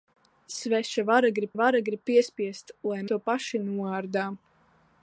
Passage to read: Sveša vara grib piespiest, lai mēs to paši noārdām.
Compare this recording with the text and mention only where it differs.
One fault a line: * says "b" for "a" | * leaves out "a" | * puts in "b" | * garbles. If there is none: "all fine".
* puts in "vara grib"
* leaves out "mēs"